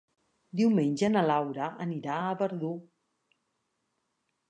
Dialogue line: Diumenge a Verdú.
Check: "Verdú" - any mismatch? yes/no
no